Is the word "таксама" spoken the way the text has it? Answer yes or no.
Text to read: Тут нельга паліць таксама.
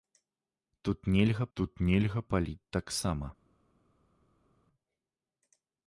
yes